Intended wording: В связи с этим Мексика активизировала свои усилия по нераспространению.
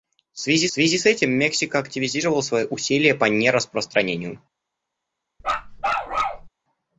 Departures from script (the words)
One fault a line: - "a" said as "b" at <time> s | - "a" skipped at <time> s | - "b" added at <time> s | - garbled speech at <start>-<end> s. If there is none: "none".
- "связи" added at 0.7 s